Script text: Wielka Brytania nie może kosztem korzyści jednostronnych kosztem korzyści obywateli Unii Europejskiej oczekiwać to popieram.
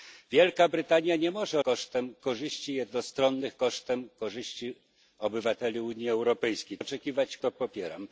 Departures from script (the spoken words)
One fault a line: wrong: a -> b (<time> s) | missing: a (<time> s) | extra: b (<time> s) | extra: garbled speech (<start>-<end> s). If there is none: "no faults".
no faults